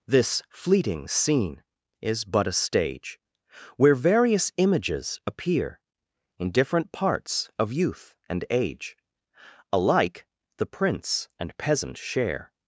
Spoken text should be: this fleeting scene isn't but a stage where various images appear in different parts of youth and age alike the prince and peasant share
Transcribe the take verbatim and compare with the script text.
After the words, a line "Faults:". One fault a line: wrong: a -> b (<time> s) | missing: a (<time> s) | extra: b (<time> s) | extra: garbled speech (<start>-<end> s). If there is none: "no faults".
this fleeting scene is but a stage where various images appear in different parts of youth and age alike the prince and peasant share
Faults:
wrong: isn't -> is (2.0 s)